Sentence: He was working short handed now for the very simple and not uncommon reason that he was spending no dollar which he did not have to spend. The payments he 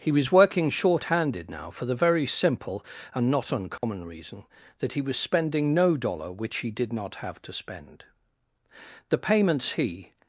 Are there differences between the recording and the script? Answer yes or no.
no